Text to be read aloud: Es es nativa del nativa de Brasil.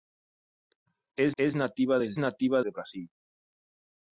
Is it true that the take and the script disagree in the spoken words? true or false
false